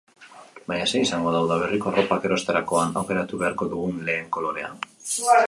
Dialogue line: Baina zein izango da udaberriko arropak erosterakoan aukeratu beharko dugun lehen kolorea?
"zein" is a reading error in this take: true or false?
false